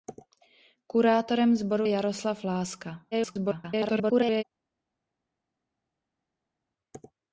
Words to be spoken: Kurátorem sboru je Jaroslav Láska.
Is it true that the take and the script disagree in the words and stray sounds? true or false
true